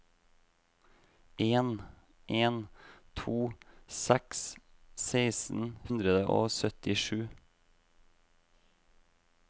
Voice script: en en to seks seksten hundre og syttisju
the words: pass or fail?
pass